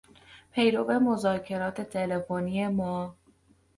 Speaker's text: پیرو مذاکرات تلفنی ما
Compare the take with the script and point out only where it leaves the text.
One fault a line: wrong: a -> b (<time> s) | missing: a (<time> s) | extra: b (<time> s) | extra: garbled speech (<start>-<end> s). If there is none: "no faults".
no faults